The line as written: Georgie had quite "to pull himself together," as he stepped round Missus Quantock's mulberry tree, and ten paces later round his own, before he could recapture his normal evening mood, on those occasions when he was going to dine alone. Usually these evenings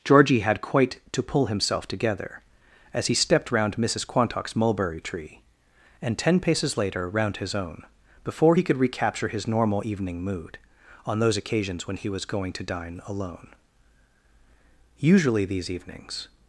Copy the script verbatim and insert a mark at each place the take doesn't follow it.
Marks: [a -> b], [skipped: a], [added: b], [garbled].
Georgie had quite "to pull himself together," as he stepped round Missus Quantock's mulberry tree, and ten paces later round his own, before he could recapture his normal evening mood, on those occasions when he was going to dine alone. Usually these evenings